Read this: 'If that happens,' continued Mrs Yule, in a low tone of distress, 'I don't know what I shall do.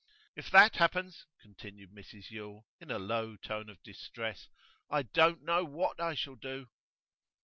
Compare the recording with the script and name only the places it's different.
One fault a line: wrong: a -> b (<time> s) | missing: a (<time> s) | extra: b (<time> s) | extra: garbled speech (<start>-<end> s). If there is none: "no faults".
no faults